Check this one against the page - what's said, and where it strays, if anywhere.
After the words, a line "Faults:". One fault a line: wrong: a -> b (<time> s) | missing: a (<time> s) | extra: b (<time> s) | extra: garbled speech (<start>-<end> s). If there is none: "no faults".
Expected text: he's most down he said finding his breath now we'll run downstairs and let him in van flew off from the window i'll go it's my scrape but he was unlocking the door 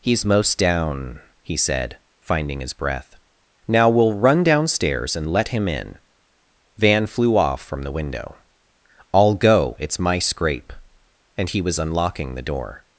he's most down he said finding his breath now we'll run downstairs and let him in van flew off from the window i'll go it's my scrape and he was unlocking the door
Faults:
wrong: but -> and (11.4 s)